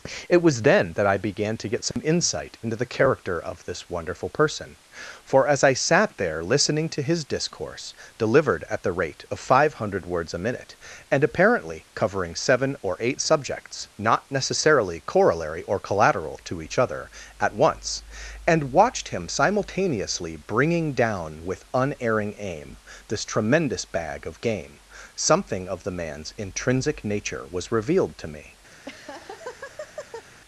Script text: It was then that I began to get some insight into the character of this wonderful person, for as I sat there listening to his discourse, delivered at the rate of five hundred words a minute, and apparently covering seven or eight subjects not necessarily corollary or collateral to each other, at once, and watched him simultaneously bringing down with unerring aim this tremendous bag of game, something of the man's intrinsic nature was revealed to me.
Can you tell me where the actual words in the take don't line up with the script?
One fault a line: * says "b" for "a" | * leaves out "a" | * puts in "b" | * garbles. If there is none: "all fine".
all fine